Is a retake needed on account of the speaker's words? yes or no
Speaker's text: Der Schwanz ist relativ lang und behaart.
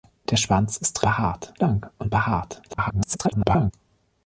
yes